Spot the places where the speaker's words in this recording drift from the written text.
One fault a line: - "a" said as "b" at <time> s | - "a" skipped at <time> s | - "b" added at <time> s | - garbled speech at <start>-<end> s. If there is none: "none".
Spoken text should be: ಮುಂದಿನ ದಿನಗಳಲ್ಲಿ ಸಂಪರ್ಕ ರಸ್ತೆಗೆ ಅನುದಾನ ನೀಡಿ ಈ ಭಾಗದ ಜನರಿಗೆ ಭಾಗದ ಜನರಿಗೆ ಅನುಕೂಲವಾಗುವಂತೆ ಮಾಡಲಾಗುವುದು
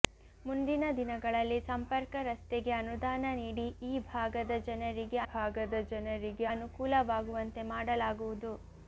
none